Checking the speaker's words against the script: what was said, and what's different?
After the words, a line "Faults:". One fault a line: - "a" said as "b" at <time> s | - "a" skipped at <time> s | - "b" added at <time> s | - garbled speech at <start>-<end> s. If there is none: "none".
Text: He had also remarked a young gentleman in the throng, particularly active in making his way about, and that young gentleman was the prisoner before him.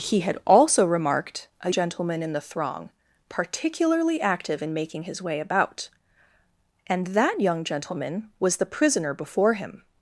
He had also remarked a gentleman in the throng, particularly active in making his way about, and that young gentleman was the prisoner before him.
Faults:
- "young" skipped at 1.7 s